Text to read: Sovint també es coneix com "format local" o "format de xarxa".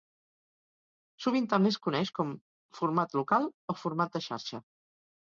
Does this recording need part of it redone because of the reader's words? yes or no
no